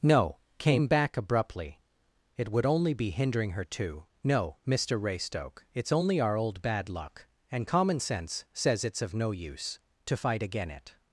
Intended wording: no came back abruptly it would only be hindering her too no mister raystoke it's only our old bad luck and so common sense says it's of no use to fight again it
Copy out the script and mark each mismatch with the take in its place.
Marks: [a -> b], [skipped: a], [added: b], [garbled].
no came back abruptly it would only be hindering her too no mister raystoke it's only our old bad luck and [skipped: so] common sense says it's of no use to fight again it